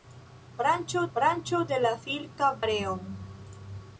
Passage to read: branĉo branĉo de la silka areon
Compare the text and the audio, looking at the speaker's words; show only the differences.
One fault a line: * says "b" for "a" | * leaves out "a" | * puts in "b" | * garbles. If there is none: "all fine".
all fine